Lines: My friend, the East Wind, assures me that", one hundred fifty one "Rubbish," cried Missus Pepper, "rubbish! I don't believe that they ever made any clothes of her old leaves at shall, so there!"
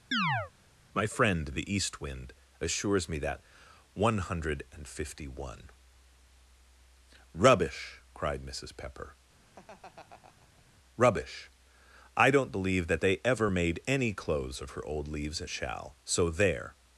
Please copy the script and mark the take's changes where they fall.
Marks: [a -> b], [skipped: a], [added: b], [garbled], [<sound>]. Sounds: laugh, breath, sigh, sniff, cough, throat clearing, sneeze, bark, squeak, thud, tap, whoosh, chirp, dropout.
[chirp] My friend, the East Wind, assures me that", one hundred fifty one "Rubbish," cried Missus Pepper, [laugh] "rubbish! I don't believe that they ever made any clothes of her old leaves at shall, so there!"